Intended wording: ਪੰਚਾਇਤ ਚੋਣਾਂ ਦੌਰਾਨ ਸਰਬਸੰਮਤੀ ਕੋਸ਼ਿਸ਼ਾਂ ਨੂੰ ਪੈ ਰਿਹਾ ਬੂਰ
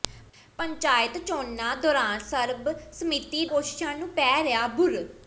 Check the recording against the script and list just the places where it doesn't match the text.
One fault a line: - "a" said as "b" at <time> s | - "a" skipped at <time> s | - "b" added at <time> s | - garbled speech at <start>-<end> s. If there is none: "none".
none